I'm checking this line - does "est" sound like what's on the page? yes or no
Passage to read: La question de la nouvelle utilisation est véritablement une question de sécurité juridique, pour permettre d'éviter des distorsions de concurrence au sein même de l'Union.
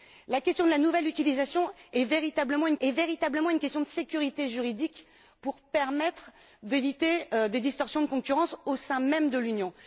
yes